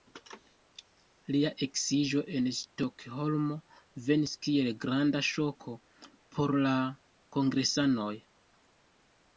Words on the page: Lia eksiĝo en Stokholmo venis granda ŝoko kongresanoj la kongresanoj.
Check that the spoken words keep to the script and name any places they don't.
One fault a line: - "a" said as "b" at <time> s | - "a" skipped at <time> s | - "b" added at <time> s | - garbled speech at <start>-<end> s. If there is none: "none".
- "kiel" added at 4.5 s
- "kongresanoj" said as "por" at 6.4 s